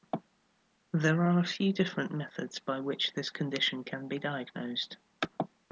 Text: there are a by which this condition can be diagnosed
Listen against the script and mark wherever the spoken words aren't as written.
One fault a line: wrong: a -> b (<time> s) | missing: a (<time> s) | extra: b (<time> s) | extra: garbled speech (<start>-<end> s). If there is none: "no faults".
extra: few different methods (1.4 s)